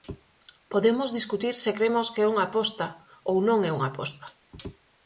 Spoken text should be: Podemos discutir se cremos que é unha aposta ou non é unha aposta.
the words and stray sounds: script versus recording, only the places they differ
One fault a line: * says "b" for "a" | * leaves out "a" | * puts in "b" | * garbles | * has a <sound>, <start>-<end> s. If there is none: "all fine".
all fine